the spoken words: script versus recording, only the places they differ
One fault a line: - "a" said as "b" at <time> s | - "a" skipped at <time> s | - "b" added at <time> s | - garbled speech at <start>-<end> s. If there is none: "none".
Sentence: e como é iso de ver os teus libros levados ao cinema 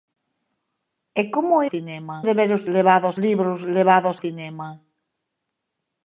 - "iso" said as "cinema" at 1.7 s
- "teus" said as "levados" at 2.8 s
- "ao" skipped at 4.2 s